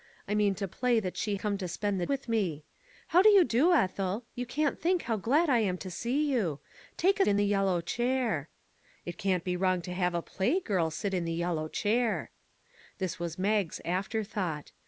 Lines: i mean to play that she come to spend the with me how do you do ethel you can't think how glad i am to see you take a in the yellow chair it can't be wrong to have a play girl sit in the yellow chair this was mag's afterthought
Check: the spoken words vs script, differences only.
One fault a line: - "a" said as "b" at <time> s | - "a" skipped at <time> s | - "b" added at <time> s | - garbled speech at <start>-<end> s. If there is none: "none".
none